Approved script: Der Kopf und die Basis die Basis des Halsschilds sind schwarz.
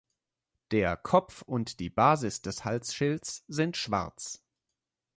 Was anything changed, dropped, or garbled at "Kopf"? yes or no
no